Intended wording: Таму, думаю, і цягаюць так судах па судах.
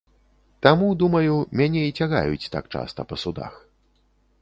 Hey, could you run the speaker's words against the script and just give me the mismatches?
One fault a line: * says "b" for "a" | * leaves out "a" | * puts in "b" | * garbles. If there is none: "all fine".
* puts in "мяне"
* says "часта" for "судах"